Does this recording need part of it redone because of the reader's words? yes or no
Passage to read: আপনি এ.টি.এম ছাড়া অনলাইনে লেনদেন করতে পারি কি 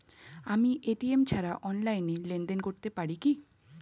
yes